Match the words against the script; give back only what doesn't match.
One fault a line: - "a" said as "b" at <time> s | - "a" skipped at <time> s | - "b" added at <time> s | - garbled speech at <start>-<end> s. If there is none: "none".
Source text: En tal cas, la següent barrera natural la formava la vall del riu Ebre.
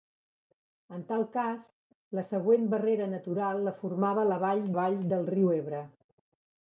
- "vall" added at 4.8 s